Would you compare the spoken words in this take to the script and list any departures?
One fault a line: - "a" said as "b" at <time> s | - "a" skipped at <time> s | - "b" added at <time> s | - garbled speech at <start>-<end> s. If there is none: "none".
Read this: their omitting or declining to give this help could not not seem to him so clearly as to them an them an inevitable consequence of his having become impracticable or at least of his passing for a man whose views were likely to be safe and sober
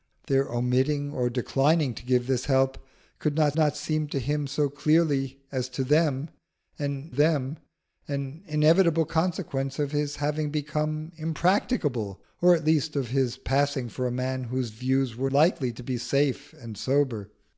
none